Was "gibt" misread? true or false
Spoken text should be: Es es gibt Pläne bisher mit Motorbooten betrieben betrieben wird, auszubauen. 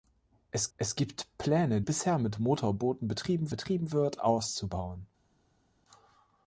false